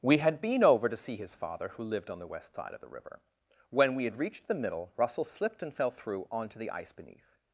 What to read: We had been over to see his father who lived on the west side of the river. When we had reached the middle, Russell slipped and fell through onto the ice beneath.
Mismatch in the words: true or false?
false